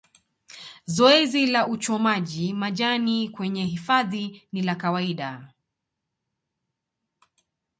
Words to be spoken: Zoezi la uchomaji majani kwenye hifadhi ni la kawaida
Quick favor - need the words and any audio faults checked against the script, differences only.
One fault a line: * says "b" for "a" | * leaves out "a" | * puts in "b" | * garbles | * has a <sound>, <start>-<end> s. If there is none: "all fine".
all fine